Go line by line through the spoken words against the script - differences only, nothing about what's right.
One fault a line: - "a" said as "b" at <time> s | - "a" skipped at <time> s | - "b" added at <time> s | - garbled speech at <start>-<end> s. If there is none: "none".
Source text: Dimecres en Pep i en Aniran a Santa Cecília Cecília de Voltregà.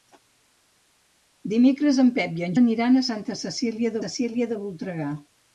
none